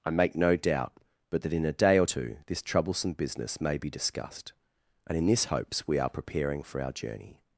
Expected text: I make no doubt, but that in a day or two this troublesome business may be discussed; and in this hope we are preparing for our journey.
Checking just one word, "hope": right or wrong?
wrong